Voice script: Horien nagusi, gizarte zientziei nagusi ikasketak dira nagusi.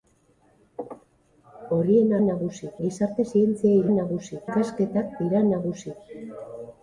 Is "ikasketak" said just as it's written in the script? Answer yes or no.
yes